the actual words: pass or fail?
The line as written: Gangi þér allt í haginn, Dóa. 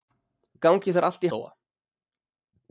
fail